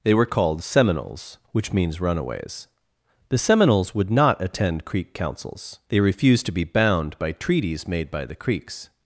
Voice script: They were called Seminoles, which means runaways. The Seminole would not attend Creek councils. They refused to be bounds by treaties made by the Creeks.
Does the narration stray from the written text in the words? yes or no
yes